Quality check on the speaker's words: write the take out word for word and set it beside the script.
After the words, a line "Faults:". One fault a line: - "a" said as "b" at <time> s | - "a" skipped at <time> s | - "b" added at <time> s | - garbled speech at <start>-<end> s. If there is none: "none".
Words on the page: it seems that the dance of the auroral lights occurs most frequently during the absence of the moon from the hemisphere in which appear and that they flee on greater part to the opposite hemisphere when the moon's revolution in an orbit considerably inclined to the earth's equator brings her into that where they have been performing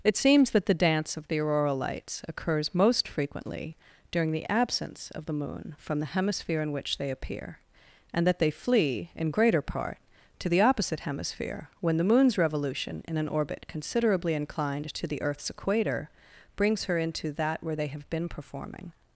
it seems that the dance of the auroral lights occurs most frequently during the absence of the moon from the hemisphere in which they appear and that they flee in greater part to the opposite hemisphere when the moon's revolution in an orbit considerably inclined to the earth's equator brings her into that where they have been performing
Faults:
- "they" added at 7.0 s
- "on" said as "in" at 9.2 s